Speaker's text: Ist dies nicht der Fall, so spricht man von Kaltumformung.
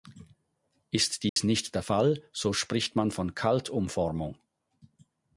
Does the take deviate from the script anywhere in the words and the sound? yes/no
yes